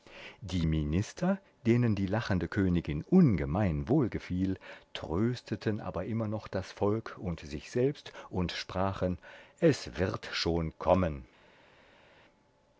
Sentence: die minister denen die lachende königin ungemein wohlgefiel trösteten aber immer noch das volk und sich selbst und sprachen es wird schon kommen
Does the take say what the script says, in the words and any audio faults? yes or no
yes